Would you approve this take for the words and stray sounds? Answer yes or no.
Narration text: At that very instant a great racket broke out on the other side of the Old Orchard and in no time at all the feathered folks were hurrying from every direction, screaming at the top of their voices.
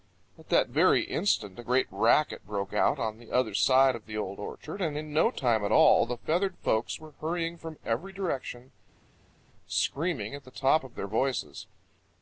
yes